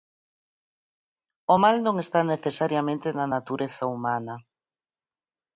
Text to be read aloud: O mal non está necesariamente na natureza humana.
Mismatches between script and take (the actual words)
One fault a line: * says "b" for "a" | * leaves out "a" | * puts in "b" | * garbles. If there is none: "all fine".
all fine